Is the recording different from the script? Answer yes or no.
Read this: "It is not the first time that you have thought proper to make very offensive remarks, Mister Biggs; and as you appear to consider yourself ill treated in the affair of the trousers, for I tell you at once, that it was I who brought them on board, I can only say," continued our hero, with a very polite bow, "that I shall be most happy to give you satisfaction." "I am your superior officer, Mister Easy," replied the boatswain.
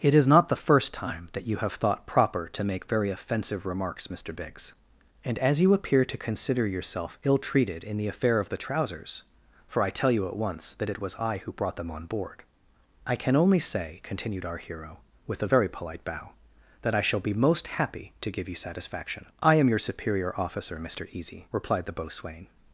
no